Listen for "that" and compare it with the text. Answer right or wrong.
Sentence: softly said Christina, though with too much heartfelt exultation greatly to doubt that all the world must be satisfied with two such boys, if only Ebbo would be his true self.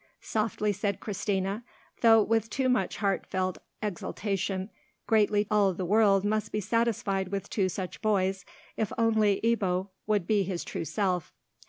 wrong